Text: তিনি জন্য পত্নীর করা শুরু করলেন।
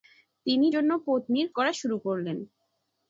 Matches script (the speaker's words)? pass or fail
pass